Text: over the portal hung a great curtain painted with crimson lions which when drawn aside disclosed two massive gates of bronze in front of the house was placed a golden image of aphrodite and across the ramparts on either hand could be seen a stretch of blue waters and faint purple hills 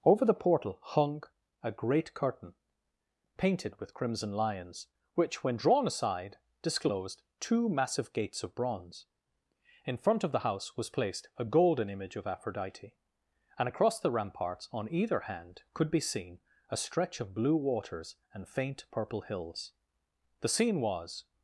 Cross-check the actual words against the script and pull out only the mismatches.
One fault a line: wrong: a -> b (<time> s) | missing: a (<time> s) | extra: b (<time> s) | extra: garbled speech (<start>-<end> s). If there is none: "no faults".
extra: the scene was (20.4 s)